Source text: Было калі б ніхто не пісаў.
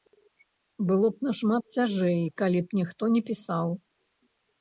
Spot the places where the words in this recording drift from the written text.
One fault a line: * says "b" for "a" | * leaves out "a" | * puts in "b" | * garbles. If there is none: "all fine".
* puts in "б нашмат цяжэй"